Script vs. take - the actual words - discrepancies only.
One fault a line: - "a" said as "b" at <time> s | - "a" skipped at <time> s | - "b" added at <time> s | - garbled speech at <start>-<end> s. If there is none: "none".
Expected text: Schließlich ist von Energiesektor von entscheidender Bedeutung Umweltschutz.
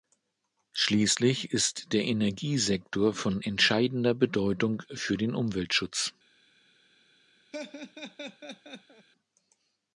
- "von" said as "der" at 1.9 s
- "für den" added at 4.9 s